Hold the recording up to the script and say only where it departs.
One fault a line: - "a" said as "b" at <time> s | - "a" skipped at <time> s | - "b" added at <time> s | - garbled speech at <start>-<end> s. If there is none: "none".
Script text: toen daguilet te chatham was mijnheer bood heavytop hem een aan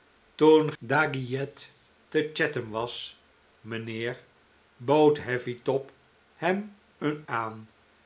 none